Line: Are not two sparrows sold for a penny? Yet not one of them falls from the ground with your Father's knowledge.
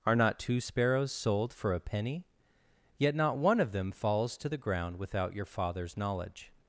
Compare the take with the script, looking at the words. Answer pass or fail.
fail